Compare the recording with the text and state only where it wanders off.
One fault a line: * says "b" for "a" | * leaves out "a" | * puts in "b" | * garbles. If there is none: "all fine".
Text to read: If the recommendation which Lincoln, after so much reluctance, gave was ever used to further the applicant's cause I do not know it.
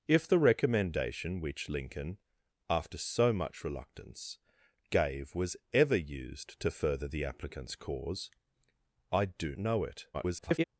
* leaves out "not"
* garbles